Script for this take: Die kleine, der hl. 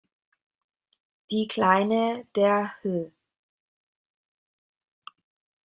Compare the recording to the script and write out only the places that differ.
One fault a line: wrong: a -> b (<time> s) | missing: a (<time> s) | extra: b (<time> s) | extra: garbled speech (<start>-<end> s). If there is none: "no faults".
no faults